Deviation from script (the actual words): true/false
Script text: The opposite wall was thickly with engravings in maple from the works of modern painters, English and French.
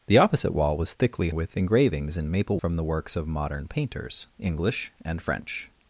false